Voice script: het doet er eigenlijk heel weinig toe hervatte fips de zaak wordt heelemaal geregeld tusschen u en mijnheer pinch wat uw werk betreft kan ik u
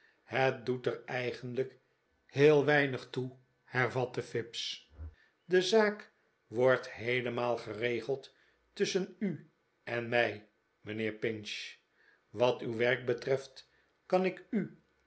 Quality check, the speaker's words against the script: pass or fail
fail